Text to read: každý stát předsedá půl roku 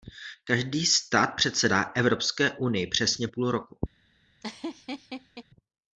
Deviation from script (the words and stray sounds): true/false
true